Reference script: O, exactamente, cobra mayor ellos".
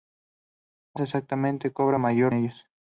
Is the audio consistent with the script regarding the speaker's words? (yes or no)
yes